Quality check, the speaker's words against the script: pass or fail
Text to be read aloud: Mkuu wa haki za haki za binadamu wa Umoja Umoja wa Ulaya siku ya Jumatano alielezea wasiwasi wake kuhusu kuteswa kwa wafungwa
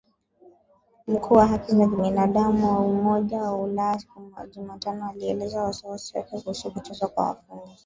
fail